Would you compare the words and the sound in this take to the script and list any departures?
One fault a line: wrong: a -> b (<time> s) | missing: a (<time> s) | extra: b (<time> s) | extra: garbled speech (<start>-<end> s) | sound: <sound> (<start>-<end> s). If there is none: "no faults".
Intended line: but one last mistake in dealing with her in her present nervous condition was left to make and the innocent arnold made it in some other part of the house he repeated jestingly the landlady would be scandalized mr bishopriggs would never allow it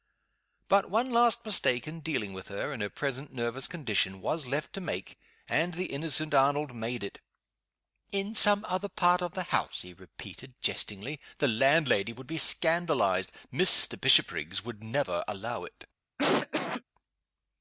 sound: cough (16.2-16.8 s)